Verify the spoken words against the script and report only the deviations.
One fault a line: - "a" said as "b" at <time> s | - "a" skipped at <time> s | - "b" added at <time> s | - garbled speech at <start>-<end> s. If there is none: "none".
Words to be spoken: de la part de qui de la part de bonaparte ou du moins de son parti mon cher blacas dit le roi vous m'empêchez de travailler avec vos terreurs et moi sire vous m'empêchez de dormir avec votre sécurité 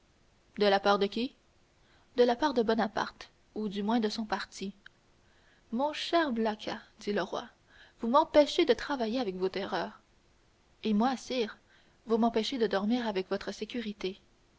none